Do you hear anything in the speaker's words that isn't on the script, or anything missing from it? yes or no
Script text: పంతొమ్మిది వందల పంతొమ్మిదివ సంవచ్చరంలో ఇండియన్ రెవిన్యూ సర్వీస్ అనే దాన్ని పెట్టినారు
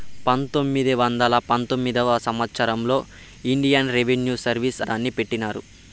yes